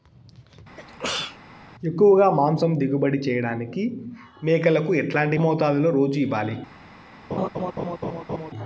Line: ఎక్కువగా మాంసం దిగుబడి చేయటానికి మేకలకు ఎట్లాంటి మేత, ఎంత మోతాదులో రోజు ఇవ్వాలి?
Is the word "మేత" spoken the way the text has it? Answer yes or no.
no